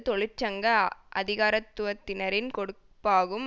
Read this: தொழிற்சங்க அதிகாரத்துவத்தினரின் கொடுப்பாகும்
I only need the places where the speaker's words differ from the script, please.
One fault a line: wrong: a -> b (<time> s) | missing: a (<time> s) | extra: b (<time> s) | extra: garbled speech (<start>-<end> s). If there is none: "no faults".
no faults